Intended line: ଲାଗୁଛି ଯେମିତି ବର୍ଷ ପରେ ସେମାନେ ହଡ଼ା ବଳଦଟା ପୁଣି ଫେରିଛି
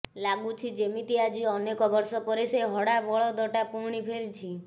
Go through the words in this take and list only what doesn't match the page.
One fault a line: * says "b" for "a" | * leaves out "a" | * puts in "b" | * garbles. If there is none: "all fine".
* puts in "ଆଜି ଅନେକ"
* says "ସେ" for "ସେମାନେ"